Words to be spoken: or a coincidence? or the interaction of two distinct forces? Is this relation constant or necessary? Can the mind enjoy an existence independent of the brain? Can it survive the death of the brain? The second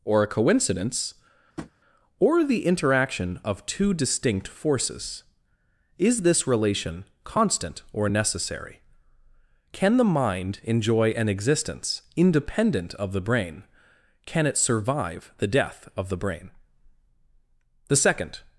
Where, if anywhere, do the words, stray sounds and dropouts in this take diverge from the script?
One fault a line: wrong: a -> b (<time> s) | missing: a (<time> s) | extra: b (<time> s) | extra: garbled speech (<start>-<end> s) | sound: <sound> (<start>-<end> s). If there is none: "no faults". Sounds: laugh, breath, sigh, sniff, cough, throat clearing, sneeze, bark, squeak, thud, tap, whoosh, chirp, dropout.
sound: tap (1.6-1.7 s)